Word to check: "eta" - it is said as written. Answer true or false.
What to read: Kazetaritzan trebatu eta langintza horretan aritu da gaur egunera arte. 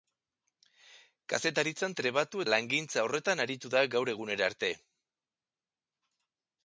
false